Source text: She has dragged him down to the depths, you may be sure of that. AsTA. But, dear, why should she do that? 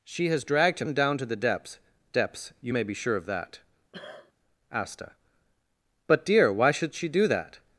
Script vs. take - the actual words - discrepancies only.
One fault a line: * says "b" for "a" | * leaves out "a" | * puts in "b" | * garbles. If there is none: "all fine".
* puts in "depths"